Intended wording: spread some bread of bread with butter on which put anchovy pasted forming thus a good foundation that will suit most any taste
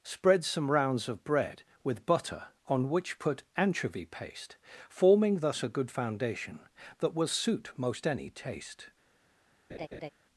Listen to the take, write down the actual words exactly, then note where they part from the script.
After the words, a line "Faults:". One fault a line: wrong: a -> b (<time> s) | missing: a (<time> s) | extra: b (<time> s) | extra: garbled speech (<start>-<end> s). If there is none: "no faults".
spread some rounds of bread with butter on which put anchovy paste forming thus a good foundation that will suit most any taste
Faults:
wrong: bread -> rounds (0.7 s)
wrong: pasted -> paste (4.0 s)